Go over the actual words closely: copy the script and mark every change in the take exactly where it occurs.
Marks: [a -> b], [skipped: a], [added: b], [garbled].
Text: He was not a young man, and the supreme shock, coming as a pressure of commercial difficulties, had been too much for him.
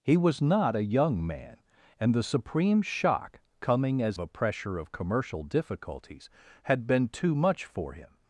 He was not a young man, and the supreme shock, coming as a pressure of commercial difficulties, had been too much for him.